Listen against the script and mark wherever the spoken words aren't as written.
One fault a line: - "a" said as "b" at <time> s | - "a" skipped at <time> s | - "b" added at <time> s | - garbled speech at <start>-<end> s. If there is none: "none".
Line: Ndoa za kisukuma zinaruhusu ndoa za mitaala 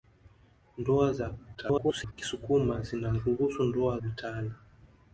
- garbled speech at 1.5-2.1 s
- "za" skipped at 4.0 s